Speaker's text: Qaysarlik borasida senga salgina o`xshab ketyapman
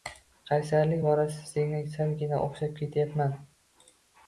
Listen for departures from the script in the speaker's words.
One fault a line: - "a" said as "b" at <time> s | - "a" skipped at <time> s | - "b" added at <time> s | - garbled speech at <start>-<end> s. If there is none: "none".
none